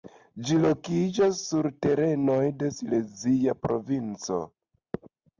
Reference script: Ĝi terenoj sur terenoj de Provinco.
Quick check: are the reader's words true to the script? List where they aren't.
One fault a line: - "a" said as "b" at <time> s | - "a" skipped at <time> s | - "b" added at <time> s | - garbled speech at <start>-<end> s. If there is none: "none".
- "terenoj" said as "lokiĝas" at 0.6 s
- "Silezia" added at 2.8 s